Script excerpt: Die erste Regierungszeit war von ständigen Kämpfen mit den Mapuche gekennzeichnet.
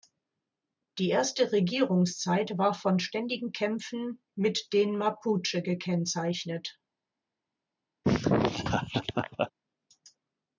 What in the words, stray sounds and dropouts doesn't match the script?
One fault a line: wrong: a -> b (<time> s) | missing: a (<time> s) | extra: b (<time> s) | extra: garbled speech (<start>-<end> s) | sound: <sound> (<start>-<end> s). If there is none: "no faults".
sound: laugh (8.0-9.5 s)